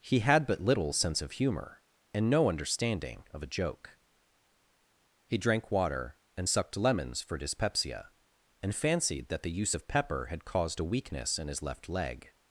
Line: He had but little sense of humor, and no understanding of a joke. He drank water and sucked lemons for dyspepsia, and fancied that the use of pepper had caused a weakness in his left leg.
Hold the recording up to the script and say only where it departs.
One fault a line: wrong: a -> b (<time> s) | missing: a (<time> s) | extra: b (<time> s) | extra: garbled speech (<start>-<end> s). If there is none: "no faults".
no faults